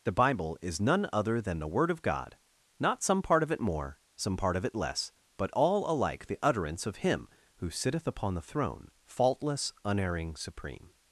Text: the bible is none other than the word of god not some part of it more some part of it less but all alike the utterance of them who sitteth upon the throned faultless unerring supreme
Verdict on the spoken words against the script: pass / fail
fail